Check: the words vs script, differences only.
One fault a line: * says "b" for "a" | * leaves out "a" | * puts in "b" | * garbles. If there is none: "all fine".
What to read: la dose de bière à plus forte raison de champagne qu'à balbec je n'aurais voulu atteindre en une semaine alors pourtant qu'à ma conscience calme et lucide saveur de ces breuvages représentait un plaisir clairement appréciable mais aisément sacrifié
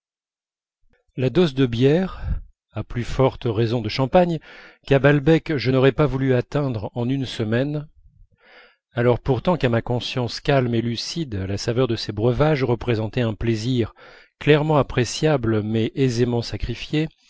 * puts in "pas"
* puts in "la"